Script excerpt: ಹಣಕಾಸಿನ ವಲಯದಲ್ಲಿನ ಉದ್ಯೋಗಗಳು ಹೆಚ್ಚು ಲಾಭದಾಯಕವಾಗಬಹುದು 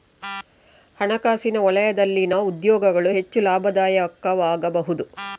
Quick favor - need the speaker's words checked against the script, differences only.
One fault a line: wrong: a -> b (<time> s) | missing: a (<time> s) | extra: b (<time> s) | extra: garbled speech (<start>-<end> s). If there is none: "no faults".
no faults